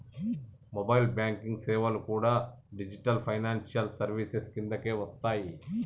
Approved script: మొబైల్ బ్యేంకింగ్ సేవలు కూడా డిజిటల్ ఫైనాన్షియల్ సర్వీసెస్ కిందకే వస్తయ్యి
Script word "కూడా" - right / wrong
right